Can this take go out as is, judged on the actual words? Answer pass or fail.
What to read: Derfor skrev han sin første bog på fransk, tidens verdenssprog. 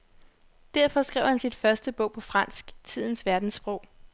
pass